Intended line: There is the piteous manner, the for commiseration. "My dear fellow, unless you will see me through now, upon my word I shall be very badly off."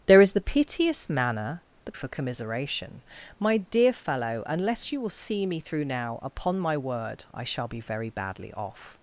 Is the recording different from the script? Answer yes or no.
no